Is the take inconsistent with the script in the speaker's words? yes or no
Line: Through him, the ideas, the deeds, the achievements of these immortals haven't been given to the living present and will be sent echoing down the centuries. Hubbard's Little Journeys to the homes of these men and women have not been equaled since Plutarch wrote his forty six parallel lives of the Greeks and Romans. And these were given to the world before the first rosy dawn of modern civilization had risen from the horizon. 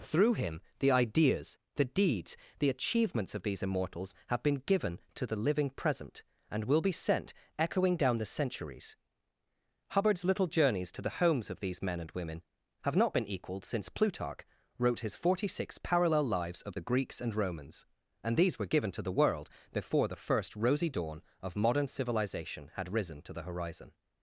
yes